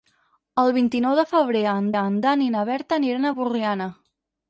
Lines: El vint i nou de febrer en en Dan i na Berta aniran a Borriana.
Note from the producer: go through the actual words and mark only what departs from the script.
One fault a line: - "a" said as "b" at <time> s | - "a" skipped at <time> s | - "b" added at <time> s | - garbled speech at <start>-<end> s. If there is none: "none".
none